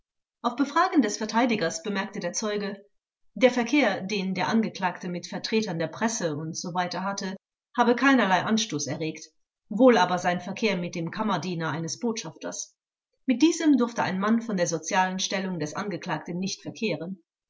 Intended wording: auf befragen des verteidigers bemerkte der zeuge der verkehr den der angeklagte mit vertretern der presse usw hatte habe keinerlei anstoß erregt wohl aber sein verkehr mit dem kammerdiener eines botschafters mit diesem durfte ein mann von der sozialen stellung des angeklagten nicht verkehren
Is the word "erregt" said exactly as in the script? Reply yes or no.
yes